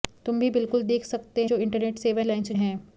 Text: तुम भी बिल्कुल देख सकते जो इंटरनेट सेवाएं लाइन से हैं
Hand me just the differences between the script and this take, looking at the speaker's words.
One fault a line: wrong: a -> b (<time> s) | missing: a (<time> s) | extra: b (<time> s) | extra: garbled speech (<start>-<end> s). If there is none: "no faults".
no faults